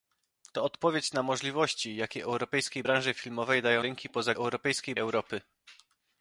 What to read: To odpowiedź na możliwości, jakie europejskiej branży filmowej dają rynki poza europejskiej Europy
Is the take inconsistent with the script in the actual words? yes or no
no